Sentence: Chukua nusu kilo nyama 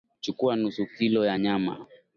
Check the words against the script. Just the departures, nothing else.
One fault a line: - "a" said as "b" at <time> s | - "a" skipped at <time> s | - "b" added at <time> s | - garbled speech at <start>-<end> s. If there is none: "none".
- "ya" added at 1.3 s